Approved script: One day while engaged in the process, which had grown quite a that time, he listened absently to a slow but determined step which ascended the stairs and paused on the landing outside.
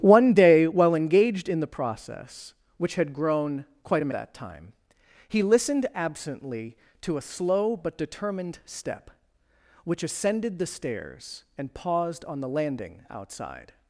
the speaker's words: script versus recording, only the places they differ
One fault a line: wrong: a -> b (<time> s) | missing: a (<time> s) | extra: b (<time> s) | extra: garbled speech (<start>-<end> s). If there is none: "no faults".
no faults